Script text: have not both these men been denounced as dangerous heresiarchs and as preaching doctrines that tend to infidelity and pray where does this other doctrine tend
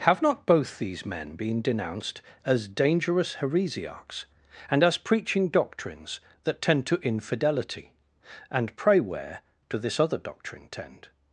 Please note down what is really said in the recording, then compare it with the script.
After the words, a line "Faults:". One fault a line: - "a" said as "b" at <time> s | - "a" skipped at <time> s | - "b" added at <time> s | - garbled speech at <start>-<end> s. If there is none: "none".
have not both these men been denounced as dangerous heresiarchs and as preaching doctrines that tend to infidelity and pray where do this other doctrine tend
Faults:
- "does" said as "do" at 9.7 s